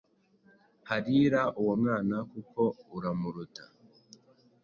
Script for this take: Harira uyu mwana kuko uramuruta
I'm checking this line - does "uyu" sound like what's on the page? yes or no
no